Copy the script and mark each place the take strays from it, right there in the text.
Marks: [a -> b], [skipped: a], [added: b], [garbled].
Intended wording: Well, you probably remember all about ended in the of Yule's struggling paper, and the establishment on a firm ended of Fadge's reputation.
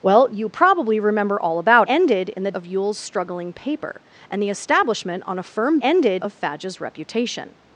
Well, you probably remember all about ended in the of Yule's struggling paper, and the establishment on a firm ended of Fadge's reputation.